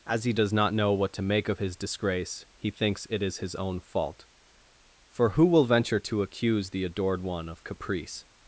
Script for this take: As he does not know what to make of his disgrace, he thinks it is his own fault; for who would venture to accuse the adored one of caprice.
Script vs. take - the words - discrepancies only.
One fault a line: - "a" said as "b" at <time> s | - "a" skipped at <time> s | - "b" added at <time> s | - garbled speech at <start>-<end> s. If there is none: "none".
- "would" said as "will" at 5.4 s